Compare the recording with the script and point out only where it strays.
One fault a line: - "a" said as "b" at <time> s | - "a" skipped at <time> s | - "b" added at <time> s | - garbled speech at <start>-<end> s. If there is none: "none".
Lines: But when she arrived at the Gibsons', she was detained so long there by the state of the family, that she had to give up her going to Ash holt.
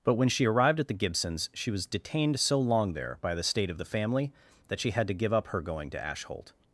none